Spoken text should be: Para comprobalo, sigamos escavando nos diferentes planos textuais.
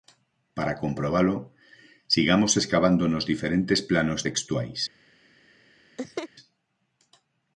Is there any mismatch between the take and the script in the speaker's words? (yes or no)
no